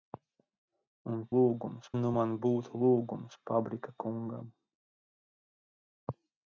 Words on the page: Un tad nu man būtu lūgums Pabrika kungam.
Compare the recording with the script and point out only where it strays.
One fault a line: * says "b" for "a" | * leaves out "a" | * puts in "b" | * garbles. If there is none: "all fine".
* says "lūgums" for "tad"